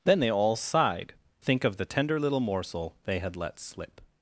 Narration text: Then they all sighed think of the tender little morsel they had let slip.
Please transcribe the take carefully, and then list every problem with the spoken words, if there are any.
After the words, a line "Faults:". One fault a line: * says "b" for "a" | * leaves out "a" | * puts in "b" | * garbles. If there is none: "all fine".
Then they all sighed think of the tender little morsel they had let slip.
Faults:
all fine